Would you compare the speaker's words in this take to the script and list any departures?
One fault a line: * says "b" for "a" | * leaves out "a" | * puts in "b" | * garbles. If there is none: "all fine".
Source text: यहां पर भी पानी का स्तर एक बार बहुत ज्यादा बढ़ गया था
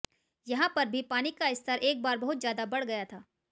all fine